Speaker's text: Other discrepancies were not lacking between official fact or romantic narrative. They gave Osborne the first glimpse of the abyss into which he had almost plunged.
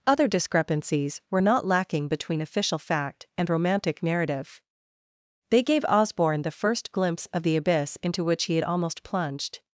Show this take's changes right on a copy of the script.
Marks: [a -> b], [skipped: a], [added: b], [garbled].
Other discrepancies were not lacking between official fact [or -> and] romantic narrative. They gave Osborne the first glimpse of the abyss into which he had almost plunged.